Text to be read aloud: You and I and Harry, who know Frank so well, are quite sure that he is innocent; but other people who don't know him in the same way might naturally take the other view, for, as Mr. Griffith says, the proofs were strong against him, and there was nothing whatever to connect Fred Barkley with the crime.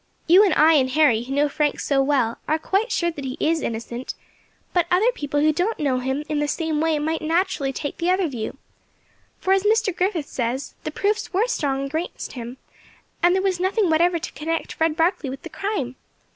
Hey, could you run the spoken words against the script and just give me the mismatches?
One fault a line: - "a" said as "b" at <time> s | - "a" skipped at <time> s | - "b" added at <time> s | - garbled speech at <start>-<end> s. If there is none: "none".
none